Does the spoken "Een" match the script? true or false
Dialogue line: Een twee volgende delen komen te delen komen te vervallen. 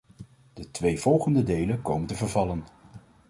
false